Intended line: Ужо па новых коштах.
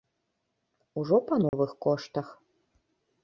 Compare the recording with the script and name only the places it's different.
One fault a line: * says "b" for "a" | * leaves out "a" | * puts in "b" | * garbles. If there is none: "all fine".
all fine